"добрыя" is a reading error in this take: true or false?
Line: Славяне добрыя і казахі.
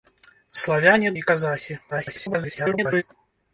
true